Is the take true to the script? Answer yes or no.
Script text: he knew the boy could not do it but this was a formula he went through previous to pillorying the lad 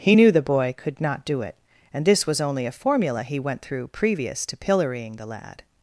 no